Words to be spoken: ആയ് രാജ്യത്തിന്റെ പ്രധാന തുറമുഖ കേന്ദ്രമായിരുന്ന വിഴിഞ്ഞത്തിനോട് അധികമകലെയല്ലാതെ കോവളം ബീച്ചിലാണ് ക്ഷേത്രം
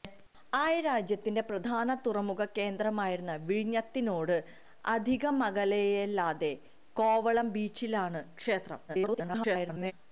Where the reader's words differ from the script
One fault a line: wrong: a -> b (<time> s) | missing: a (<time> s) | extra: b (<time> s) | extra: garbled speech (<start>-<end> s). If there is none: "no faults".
extra: garbled speech (8.9-9.9 s)